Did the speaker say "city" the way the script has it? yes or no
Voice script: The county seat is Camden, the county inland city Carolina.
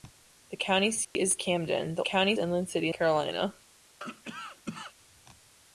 yes